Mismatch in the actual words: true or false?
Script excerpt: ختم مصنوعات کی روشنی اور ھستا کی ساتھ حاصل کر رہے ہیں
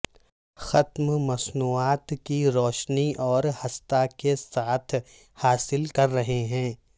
true